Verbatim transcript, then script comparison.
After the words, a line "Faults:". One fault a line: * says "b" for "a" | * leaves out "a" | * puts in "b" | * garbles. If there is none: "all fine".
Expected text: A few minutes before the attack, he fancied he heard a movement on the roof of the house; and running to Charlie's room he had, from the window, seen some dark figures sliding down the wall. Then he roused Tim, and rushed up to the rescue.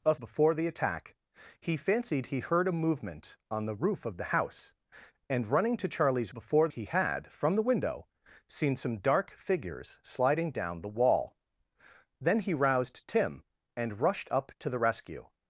A before the attack, he fancied he heard a movement on the roof of the house; and running to Charlie's before he had, from the window, seen some dark figures sliding down the wall. Then he roused Tim, and rushed up to the rescue.
Faults:
* leaves out "few minutes"
* says "before" for "room"